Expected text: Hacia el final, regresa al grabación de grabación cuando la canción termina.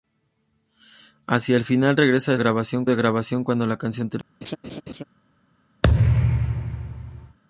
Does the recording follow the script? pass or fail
pass